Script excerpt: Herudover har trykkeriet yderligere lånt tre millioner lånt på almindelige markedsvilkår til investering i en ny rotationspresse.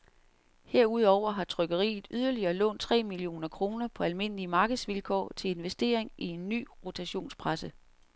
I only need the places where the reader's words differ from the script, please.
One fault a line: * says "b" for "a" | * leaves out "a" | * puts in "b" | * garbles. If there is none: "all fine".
* says "kroner" for "lånt"